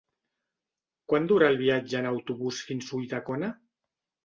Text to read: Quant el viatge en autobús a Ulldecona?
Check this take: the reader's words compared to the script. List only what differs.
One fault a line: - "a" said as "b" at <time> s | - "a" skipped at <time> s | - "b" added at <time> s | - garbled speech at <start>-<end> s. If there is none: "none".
- "dura" added at 1.3 s
- "fins" added at 2.7 s